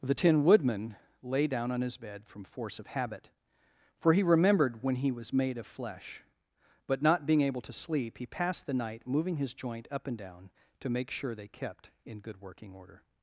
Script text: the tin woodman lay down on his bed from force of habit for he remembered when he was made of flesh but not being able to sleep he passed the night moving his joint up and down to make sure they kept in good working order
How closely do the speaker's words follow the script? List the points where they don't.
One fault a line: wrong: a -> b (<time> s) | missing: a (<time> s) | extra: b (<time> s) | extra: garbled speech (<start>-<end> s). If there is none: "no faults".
no faults